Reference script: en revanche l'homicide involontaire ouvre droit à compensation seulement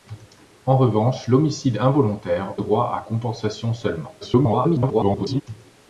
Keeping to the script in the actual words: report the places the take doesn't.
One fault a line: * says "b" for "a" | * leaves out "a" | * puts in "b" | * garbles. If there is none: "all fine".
* leaves out "ouvre"
* garbles